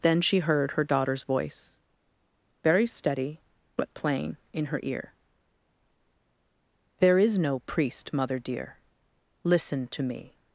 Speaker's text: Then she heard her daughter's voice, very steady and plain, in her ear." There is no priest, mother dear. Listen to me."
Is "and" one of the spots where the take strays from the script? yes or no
yes